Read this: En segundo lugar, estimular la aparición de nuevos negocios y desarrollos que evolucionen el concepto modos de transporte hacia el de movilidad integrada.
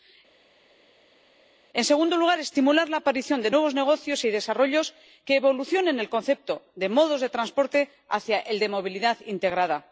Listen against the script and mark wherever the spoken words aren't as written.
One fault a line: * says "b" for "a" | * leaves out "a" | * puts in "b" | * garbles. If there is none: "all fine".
* puts in "de"